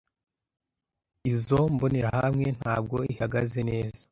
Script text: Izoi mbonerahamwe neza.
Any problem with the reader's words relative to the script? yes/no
yes